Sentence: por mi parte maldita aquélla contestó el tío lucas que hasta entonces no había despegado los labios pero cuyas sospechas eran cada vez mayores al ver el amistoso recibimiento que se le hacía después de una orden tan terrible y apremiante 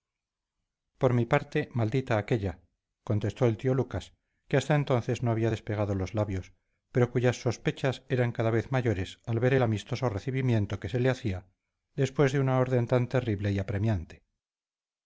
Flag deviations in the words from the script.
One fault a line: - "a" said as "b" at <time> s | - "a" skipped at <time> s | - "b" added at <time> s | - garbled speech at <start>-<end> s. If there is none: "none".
none